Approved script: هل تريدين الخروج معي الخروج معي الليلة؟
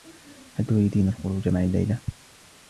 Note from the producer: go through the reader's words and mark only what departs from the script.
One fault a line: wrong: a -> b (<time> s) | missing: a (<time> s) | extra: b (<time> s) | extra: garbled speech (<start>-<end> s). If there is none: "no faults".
missing: الخروج معي (1.6 s)